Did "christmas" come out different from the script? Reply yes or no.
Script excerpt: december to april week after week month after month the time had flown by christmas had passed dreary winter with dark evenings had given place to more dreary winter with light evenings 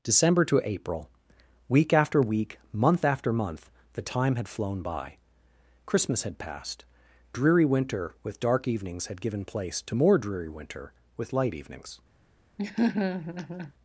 no